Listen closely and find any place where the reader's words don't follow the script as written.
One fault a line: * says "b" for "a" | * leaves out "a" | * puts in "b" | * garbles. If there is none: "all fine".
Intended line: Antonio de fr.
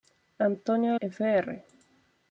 all fine